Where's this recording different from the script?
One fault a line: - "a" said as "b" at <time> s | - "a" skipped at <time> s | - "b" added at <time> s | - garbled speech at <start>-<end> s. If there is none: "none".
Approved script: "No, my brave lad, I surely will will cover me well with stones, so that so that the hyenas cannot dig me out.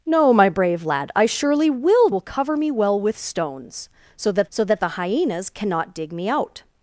none